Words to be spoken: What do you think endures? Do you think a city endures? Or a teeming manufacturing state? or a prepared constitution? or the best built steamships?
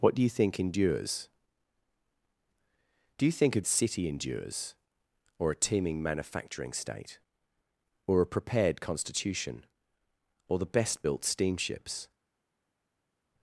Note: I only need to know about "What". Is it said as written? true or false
true